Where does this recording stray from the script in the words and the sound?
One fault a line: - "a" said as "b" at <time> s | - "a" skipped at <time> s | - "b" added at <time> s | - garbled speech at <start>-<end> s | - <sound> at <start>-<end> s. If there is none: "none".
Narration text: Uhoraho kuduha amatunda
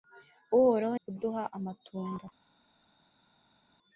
none